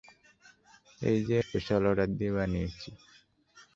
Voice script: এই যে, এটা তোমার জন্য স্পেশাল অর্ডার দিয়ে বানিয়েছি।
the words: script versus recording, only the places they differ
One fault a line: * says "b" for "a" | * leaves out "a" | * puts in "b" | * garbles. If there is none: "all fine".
* leaves out "এটা তোমার জন্য"